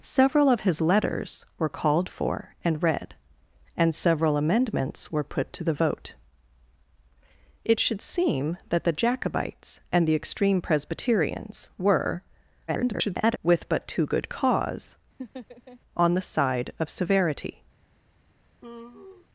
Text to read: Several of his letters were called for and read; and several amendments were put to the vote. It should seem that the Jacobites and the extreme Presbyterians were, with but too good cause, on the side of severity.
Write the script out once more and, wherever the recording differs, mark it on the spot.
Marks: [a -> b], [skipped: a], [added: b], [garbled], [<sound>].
Several of his letters were called for and read; and several amendments were put to the vote. It should seem that the Jacobites and the extreme Presbyterians were, [garbled] with but too good cause, [laugh] on the side of severity. [sigh]